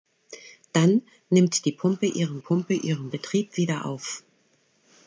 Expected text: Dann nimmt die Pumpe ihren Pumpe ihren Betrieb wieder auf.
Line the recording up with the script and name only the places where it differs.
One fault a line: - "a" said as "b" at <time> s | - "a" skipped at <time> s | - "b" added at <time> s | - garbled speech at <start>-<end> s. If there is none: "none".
none